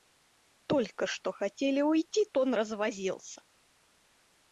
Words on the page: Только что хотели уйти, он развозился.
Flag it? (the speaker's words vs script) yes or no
no